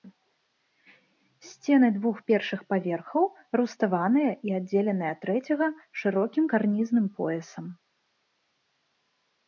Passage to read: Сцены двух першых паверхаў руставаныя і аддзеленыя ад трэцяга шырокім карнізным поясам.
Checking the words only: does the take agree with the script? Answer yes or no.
yes